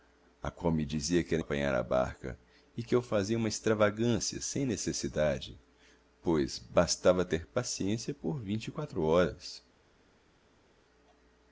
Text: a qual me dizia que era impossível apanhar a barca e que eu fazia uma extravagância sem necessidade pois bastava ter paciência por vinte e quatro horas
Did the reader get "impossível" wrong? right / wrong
wrong